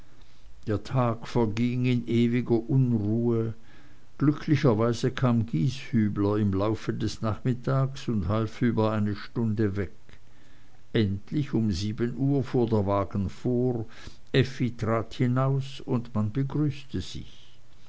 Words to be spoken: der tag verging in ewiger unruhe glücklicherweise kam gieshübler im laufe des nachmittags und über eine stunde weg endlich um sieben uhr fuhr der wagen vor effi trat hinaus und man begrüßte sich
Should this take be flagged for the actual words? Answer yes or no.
yes